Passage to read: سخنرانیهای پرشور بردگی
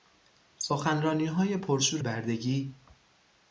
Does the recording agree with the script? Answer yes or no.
yes